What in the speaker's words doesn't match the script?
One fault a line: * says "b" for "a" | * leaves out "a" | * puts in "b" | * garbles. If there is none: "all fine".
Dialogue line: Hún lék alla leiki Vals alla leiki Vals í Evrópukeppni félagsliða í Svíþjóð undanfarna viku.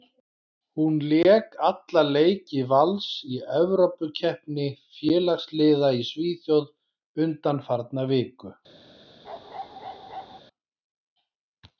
* leaves out "alla leiki Vals"